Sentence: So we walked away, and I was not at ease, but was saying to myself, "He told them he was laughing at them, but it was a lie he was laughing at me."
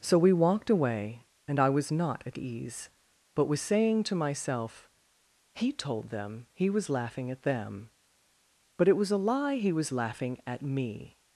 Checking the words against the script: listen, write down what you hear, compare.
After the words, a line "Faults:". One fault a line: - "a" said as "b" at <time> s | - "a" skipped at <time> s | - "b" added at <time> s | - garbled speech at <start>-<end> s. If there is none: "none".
So we walked away, and I was not at ease, but was saying to myself, "He told them he was laughing at them, but it was a lie he was laughing at me."
Faults:
none